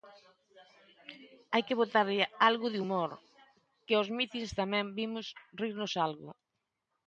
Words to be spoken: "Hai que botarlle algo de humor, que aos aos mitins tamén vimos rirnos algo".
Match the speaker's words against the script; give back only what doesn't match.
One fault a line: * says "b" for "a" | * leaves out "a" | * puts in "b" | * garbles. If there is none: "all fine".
* leaves out "aos"